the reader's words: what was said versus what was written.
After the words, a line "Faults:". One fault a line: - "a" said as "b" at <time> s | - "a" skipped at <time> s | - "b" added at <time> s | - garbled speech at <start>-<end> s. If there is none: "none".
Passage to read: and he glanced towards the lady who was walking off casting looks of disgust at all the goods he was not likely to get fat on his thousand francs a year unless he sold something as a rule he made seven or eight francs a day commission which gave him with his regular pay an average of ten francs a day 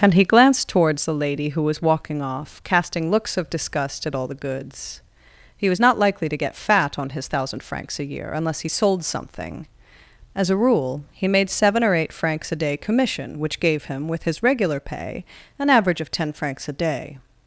and he glanced towards the lady who was walking off casting looks of disgust at all the goods he was not likely to get fat on his thousand francs a year unless he sold something as a rule he made seven or eight francs a day commission which gave him with his regular pay an average of ten francs a day
Faults:
none